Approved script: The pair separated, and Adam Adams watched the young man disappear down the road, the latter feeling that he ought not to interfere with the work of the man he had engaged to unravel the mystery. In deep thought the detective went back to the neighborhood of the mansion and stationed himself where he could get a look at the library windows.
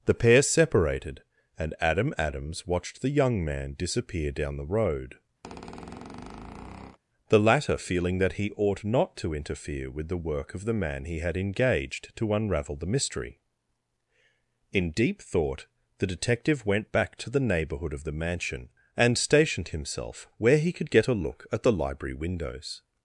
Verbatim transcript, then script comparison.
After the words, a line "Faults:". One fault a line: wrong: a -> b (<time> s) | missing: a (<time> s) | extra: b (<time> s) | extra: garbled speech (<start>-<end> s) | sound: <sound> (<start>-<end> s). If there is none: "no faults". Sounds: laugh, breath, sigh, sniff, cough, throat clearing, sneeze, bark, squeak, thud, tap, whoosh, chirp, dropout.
The pair separated, and Adam Adams watched the young man disappear down the road, the latter feeling that he ought not to interfere with the work of the man he had engaged to unravel the mystery. In deep thought the detective went back to the neighborhood of the mansion and stationed himself where he could get a look at the library windows.
Faults:
sound: squeak (5.4-7.0 s)